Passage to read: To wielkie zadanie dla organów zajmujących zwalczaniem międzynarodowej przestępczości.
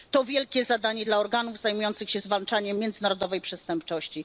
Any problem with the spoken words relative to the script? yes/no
yes